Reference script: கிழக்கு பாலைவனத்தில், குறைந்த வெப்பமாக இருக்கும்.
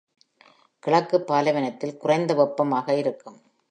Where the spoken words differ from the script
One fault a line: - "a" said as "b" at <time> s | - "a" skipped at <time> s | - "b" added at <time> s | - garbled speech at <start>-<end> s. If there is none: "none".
none